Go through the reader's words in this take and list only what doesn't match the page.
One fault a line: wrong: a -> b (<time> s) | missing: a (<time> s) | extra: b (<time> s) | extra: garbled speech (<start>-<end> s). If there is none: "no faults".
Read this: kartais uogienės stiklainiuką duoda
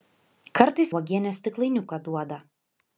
no faults